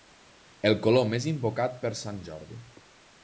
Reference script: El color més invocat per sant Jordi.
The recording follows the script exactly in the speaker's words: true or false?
true